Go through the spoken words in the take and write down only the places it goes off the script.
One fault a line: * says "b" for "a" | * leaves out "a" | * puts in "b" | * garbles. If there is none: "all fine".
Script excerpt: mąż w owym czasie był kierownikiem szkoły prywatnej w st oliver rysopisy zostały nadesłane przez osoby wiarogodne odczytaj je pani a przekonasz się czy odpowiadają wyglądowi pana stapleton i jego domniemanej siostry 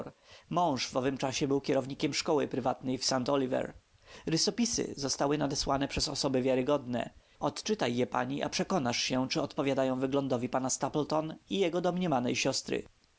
all fine